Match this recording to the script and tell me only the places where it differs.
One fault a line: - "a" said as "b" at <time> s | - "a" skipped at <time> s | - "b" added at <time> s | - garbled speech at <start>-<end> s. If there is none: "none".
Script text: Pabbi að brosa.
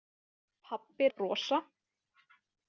none